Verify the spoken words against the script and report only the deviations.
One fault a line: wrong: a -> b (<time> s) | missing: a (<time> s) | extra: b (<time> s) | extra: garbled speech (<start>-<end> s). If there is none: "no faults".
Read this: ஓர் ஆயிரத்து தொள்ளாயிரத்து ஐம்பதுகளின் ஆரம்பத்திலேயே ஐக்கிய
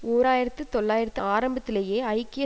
missing: ஐம்பதுகளின் (1.2 s)